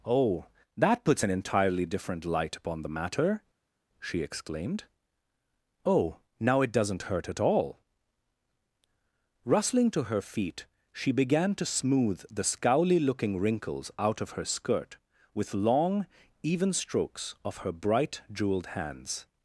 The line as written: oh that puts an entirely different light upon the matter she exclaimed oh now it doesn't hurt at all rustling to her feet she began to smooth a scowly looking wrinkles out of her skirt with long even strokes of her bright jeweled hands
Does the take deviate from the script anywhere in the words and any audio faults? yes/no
yes